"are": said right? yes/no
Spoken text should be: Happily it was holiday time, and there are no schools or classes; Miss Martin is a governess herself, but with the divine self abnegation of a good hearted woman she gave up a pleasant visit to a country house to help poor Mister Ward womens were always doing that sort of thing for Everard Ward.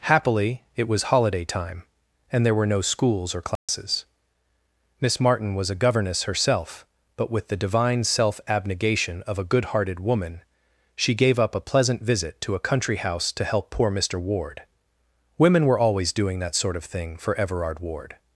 no